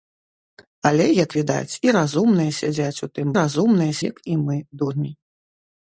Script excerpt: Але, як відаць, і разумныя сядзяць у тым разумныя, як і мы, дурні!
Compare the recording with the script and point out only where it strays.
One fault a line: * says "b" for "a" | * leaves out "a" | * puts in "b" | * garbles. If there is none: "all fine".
all fine